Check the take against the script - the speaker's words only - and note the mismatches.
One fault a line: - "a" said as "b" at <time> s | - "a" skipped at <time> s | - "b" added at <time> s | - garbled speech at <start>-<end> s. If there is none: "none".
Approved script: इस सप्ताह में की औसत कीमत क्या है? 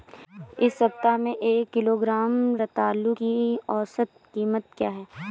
- "एक किलोग्राम रतालू" added at 1.4 s